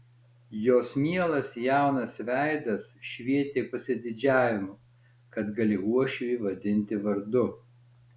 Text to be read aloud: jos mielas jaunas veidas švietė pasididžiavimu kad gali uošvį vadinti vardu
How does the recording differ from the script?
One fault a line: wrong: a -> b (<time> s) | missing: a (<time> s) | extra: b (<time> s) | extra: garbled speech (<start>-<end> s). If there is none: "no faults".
no faults